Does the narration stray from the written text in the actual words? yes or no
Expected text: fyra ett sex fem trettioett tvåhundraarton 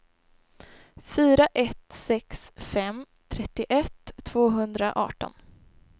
no